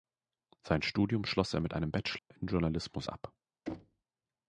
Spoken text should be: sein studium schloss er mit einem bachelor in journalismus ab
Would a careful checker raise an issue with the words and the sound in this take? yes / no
yes